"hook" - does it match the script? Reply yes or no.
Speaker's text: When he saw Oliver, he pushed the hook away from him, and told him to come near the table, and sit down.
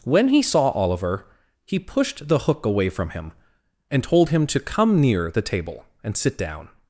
yes